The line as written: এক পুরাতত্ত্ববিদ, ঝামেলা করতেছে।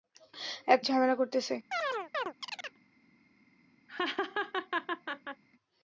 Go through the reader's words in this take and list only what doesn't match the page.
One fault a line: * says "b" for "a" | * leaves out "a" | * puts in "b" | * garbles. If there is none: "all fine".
* leaves out "পুরাতত্ত্ববিদ"